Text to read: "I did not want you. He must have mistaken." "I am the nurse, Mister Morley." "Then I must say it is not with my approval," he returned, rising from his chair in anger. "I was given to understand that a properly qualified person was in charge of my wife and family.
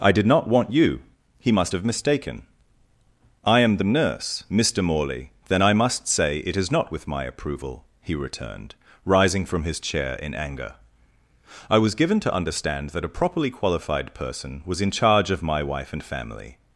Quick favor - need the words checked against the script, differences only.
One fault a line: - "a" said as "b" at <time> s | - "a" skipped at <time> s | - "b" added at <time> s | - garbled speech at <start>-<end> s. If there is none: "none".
none